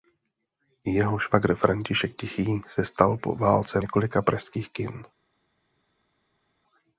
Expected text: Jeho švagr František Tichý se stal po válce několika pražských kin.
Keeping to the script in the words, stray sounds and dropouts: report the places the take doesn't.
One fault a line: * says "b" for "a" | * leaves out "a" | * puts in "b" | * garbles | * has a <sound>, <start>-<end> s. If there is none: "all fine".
all fine